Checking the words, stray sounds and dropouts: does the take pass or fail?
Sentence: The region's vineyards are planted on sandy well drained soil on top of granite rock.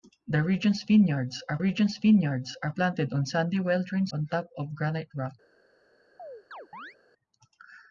fail